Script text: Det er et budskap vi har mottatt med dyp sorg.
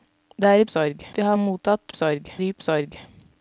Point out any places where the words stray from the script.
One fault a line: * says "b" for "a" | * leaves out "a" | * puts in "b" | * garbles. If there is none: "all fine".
* says "sorg" for "budskap"
* says "sorg" for "med"